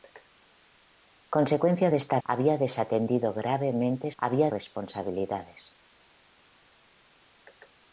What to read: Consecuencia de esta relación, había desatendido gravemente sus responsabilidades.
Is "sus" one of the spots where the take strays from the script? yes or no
yes